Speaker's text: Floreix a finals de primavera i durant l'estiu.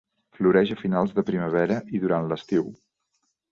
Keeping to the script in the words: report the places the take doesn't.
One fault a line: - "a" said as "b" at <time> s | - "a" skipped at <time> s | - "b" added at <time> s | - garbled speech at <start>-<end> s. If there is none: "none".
none